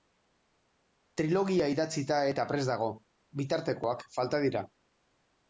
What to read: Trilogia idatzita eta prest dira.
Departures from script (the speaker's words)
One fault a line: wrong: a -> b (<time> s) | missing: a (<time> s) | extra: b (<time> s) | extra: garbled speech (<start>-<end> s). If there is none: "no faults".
extra: dago bitartekoak falta (2.7 s)